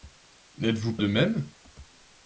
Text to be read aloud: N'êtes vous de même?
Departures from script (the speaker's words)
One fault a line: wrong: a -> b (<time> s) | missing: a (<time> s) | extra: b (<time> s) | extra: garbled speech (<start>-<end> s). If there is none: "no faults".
no faults